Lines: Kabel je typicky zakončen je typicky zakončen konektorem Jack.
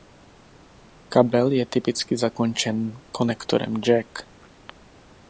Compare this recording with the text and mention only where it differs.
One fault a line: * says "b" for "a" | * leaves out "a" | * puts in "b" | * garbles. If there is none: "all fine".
* leaves out "je typicky zakončen"